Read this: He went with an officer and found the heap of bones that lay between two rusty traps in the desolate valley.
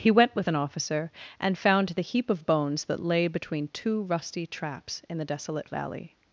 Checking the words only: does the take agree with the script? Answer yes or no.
yes